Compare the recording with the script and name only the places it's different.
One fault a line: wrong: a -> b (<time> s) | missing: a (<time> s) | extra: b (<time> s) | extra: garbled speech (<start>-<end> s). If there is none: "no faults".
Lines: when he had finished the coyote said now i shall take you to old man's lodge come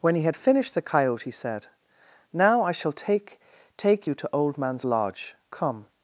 extra: take (3.8 s)